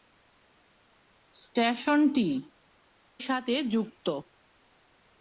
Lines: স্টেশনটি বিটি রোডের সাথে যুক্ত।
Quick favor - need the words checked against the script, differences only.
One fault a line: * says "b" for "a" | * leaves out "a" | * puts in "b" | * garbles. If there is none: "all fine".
* leaves out "বিটি রোডের"